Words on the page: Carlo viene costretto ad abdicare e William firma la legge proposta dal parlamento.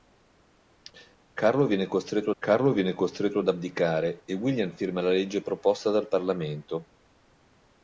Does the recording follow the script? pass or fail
fail